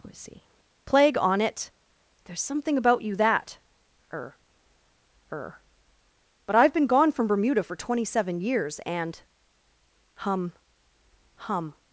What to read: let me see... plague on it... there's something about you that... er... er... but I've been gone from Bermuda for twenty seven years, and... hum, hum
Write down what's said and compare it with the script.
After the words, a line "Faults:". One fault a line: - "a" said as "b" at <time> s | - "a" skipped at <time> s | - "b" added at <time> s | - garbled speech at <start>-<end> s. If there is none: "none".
let me see... plague on it... there's something about you that... er... er... but I've been gone from Bermuda for twenty seven years, and... hum, hum
Faults:
none